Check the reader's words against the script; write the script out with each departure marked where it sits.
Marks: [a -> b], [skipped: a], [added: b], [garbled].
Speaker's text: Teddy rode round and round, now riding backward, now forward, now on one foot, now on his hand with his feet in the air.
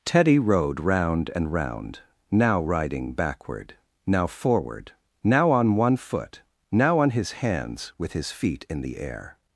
Teddy rode round and round, now riding backward, now forward, now on one foot, now on his [hand -> hands] with his feet in the air.